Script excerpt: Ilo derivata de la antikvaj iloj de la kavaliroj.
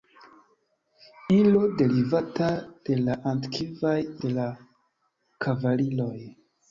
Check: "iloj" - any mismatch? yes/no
yes